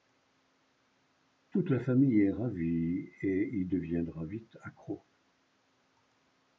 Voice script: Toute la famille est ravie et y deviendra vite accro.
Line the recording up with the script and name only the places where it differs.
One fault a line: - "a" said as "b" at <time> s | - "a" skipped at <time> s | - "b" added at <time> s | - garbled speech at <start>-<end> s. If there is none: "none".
none